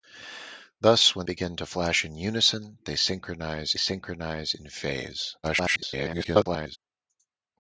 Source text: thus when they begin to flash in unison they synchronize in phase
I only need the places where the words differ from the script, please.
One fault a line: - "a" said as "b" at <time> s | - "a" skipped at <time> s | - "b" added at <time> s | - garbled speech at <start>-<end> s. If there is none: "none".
- "they" skipped at 1.3 s
- "synchronize" added at 3.8 s
- garbled speech at 5.4-6.8 s